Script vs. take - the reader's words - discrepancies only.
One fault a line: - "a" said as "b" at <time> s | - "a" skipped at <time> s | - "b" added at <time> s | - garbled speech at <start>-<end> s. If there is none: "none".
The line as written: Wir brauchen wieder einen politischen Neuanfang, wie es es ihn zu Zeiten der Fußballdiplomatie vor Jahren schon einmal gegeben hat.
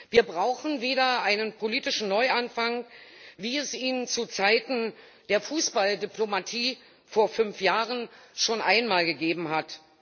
- "es" skipped at 3.7 s
- "fünf" added at 7.3 s